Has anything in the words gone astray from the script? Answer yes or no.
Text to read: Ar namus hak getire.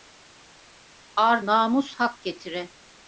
no